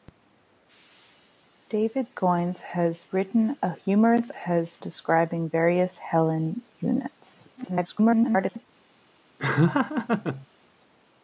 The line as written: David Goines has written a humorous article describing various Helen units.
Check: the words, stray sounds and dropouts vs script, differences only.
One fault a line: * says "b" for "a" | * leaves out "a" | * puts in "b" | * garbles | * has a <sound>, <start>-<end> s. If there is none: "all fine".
* says "has" for "article"
* garbles
* has a laugh, 9.4-10.5 s